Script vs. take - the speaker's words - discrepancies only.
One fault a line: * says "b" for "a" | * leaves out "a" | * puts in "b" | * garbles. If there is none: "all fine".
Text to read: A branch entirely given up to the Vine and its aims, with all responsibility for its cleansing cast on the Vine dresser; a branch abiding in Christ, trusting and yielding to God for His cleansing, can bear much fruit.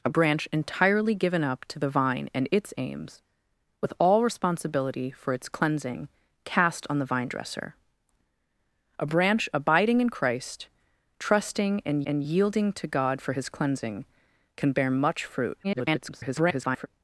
* puts in "and"
* garbles